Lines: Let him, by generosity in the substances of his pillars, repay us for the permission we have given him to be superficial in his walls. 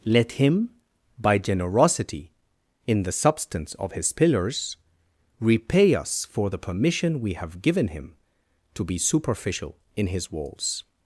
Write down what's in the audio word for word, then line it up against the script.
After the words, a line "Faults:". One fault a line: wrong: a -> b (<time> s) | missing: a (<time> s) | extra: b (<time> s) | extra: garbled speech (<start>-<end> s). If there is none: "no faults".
Let him, by generosity in the substance of his pillars, repay us for the permission we have given him to be superficial in his walls.
Faults:
wrong: substances -> substance (3.1 s)